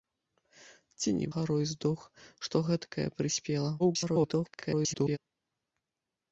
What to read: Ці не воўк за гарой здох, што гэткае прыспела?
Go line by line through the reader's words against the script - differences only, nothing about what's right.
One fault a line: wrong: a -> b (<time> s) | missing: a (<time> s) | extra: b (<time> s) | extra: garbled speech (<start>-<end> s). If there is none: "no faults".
missing: воўк за (1.3 s)
extra: garbled speech (3.8-5.2 s)